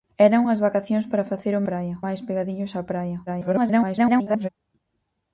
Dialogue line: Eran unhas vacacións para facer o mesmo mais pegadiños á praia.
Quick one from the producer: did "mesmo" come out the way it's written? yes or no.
no